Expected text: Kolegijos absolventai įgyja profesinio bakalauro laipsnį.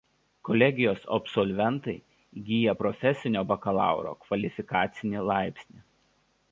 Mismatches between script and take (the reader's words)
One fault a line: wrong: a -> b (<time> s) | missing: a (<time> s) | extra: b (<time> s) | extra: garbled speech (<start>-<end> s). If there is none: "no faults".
extra: kvalifikacinį (4.3 s)